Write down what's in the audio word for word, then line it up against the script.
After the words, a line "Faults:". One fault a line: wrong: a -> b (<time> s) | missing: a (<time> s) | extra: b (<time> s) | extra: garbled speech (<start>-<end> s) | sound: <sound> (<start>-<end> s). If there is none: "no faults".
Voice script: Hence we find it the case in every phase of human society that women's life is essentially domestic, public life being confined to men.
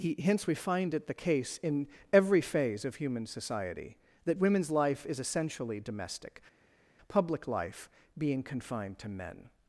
he Hence we find it the case in every phase of human society that women's life is essentially domestic, public life being confined to men.
Faults:
extra: he (0.0 s)